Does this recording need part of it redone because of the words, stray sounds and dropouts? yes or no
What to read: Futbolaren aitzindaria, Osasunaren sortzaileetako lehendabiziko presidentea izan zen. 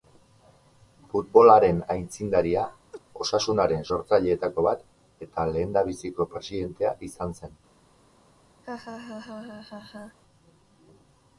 yes